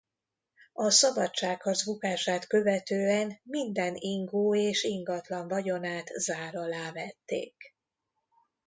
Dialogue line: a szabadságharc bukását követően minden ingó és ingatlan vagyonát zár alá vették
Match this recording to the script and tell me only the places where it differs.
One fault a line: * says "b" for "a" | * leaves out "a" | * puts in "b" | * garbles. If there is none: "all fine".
all fine